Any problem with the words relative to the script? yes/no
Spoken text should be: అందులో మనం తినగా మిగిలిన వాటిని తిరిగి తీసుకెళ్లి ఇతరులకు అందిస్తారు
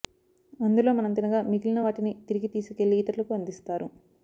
no